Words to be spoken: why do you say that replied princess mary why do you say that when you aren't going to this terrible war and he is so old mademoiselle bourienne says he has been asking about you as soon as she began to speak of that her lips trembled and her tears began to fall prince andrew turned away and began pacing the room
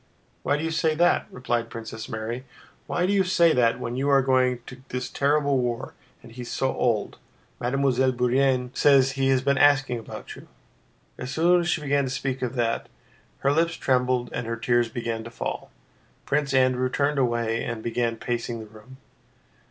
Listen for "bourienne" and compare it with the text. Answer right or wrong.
right